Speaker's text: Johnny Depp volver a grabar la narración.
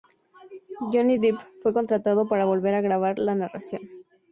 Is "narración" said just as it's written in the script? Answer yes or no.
yes